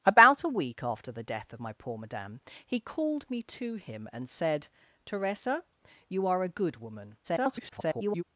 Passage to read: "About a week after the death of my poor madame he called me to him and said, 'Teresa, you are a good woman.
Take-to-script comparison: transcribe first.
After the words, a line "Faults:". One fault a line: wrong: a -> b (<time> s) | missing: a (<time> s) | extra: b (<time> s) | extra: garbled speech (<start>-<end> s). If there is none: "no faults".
"About a week after the death of my poor madame he called me to him and said, 'Teresa, you are a good woman. [garbled]
Faults:
extra: garbled speech (7.2-8.2 s)